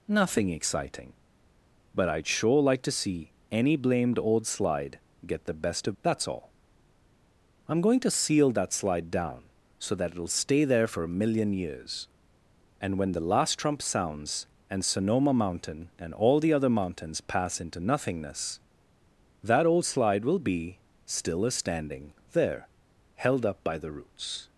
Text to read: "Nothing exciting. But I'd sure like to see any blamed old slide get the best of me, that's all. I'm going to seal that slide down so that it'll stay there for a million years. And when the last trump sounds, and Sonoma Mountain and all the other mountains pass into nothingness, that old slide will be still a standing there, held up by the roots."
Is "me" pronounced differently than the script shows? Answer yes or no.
yes